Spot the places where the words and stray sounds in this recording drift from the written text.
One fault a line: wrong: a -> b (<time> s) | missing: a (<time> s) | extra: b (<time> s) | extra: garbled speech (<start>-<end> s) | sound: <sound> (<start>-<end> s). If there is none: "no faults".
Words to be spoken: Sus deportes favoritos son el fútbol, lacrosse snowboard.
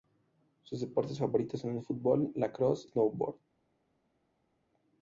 no faults